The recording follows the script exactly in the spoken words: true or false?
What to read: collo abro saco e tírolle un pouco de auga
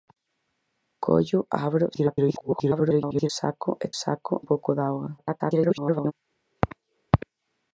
false